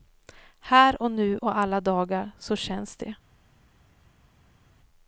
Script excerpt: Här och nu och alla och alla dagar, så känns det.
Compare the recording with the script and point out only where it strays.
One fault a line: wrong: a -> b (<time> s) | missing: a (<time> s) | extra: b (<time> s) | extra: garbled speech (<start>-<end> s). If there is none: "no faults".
missing: och alla (1.8 s)